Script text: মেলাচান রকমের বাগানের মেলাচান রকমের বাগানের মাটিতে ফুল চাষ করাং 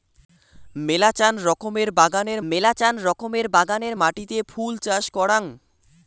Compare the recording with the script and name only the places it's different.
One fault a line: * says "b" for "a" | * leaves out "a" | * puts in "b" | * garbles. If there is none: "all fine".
all fine